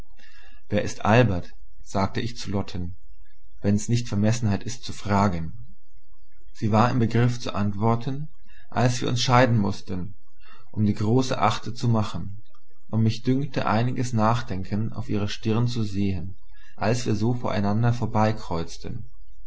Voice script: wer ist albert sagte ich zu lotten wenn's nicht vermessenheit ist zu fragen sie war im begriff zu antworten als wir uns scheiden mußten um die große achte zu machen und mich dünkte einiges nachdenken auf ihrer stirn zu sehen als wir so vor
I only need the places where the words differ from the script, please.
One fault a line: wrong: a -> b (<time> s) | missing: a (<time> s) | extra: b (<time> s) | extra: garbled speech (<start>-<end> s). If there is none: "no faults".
no faults